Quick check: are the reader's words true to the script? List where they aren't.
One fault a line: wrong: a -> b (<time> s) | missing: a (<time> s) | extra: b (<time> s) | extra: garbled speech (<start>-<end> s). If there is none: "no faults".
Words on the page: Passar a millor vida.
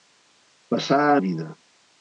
missing: millor (1.2 s)